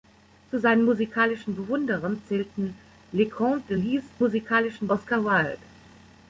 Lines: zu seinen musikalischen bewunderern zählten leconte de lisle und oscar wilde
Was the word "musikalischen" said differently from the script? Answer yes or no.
no